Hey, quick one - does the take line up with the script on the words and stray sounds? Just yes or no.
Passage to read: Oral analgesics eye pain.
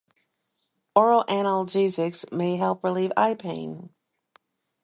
no